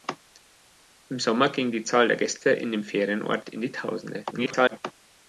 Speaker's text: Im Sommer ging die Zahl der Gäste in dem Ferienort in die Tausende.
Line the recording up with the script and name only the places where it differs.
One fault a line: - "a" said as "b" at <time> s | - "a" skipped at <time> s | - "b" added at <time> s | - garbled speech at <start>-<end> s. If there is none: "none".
- garbled speech at 4.3-4.8 s